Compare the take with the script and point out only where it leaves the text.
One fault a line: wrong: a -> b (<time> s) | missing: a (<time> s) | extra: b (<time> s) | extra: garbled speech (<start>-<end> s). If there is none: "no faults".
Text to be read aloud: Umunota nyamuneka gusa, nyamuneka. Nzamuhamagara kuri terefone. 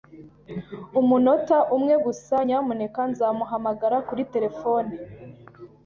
wrong: nyamuneka -> umwe (1.8 s)